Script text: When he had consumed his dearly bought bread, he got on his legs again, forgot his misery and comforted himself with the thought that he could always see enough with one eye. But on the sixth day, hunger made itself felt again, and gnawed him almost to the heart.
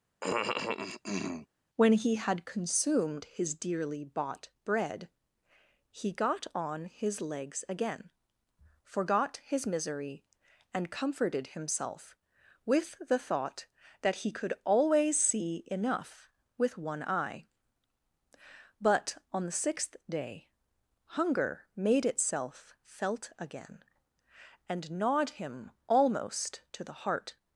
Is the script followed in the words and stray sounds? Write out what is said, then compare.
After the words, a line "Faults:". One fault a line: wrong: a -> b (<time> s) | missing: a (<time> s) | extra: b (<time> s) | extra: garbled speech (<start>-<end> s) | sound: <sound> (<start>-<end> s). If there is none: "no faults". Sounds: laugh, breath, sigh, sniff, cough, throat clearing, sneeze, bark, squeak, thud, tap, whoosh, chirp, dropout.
When he had consumed his dearly bought bread, he got on his legs again, forgot his misery and comforted himself with the thought that he could always see enough with one eye. But on the sixth day, hunger made itself felt again, and gnawed him almost to the heart.
Faults:
sound: cough (0.2-1.5 s)